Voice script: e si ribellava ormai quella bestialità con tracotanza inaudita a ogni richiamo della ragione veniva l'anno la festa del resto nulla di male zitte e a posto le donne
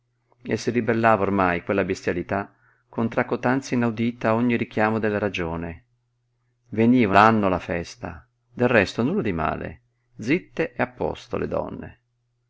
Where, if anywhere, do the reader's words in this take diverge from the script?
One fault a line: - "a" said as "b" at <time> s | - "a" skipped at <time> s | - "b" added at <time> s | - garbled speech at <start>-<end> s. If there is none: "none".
none